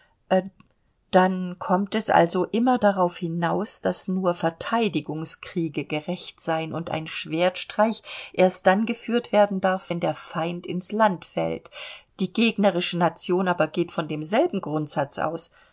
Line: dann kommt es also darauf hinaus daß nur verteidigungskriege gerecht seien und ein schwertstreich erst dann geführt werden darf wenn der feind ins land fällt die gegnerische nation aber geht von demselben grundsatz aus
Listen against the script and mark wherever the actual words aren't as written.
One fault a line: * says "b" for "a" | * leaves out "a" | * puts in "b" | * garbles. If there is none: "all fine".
* puts in "immer"